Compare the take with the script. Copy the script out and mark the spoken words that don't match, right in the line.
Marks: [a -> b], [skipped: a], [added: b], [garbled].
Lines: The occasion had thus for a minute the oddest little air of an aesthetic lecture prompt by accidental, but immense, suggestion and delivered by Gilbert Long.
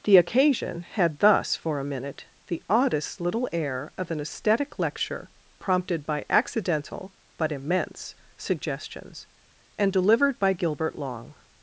The occasion had thus for a minute the oddest little air of an aesthetic lecture [prompt -> prompted] by accidental, but immense, [suggestion -> suggestions] and delivered by Gilbert Long.